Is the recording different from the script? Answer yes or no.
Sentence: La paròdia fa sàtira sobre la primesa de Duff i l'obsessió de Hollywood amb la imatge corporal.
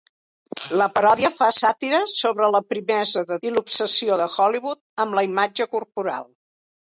yes